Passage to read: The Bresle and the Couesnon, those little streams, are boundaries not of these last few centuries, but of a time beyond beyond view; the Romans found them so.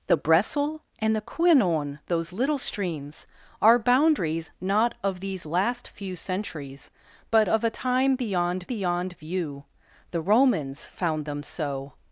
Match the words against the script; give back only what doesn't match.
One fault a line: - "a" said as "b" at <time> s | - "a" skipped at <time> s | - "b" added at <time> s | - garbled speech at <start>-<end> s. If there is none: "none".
none